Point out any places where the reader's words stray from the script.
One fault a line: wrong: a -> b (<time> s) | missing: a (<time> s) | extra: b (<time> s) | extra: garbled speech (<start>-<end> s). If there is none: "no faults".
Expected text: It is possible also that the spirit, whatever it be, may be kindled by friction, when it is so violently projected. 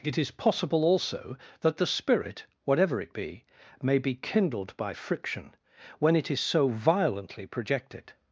no faults